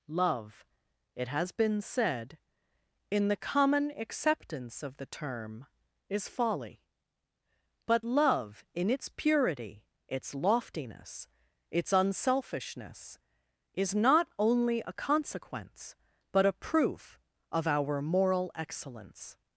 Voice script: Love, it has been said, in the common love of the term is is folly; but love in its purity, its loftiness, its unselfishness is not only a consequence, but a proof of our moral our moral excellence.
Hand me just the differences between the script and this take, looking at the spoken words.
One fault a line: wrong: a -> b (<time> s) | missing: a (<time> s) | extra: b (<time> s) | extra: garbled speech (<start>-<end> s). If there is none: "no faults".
wrong: love -> acceptance (3.9 s)
missing: is (6.3 s)
missing: our moral (18.5 s)